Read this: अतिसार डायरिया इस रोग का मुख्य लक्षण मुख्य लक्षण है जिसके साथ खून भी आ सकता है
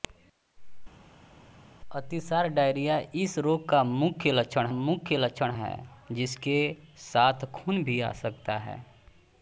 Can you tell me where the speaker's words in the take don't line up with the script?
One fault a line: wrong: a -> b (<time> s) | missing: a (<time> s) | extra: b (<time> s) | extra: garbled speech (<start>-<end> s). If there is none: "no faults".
no faults